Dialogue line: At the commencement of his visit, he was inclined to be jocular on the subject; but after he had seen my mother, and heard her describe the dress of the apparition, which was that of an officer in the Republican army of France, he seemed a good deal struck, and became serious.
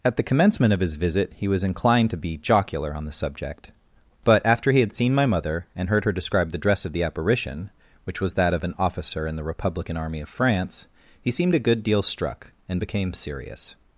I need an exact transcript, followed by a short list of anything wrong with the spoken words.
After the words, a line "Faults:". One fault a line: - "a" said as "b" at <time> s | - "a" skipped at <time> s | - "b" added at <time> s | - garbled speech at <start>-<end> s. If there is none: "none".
At the commencement of his visit, he was inclined to be jocular on the subject; but after he had seen my mother, and heard her describe the dress of the apparition, which was that of an officer in the Republican army of France, he seemed a good deal struck, and became serious.
Faults:
none